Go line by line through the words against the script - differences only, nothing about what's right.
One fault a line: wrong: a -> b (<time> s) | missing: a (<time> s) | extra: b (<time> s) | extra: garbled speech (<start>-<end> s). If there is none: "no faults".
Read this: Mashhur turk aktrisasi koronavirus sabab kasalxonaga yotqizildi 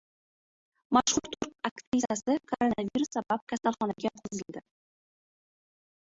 no faults